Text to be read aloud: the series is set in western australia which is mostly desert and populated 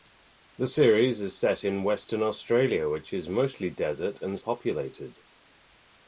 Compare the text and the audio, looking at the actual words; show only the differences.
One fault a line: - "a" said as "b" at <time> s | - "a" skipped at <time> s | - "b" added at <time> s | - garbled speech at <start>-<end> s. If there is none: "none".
none